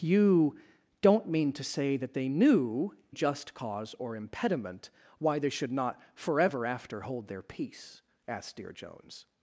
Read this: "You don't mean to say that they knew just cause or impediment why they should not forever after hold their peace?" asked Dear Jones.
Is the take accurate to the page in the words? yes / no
yes